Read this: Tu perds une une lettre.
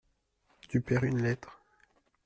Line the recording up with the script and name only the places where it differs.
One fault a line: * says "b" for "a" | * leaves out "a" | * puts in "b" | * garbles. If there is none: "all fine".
* leaves out "une"